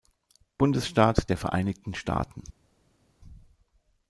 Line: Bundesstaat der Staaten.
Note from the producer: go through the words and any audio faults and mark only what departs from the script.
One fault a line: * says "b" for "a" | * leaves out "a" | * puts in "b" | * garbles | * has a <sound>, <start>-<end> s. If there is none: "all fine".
* puts in "Vereinigten"